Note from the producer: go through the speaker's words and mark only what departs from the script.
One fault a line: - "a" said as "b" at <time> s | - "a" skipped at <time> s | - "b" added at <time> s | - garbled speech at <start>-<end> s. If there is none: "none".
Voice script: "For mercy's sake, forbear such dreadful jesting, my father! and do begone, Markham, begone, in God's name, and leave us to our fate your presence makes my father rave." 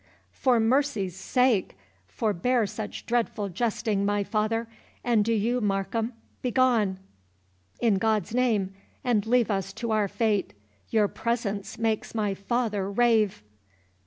- "begone" said as "you" at 5.3 s